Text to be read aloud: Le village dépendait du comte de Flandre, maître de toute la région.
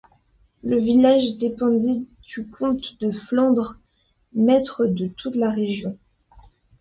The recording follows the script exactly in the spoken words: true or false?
true